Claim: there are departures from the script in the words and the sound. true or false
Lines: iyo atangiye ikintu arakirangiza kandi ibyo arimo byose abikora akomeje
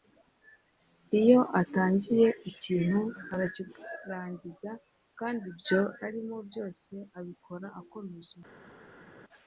false